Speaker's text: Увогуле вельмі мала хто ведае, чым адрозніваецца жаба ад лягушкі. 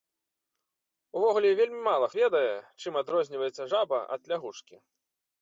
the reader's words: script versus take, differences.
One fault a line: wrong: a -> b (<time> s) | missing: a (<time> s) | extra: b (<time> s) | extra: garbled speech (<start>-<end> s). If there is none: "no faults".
missing: хто (2.1 s)